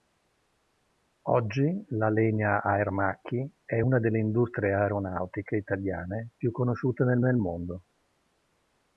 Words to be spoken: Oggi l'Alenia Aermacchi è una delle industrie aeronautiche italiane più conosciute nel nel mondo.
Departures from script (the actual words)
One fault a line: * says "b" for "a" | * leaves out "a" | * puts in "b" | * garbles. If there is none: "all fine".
all fine